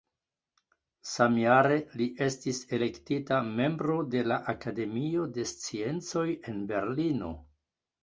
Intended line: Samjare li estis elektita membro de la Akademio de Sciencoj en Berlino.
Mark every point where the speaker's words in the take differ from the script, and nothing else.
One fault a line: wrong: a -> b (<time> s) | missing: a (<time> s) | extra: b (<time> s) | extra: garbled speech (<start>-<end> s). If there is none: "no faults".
no faults